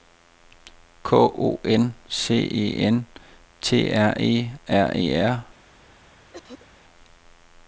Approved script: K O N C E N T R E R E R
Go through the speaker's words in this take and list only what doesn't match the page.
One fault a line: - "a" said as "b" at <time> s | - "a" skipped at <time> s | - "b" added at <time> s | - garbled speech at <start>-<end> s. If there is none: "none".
none